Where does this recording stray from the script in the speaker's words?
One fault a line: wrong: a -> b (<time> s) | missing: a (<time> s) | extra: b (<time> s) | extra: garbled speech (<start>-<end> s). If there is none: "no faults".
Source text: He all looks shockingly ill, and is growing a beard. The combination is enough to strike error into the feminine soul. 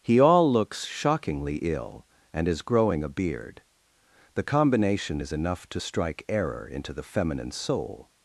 no faults